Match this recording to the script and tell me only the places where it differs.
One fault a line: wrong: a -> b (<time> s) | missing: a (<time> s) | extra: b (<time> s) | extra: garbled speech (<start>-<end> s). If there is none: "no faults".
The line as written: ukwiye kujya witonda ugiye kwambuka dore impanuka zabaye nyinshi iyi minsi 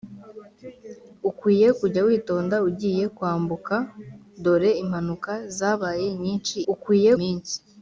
wrong: iyi -> ukwiye (6.7 s)